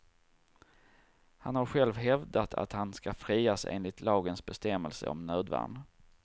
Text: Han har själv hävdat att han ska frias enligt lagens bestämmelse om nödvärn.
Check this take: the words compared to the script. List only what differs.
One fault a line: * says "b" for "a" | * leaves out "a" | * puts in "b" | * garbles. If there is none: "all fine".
all fine